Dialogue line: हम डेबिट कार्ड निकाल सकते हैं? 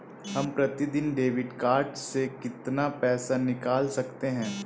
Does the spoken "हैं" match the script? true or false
true